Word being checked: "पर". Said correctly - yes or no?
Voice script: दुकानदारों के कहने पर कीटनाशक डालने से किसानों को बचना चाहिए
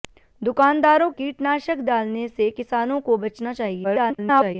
no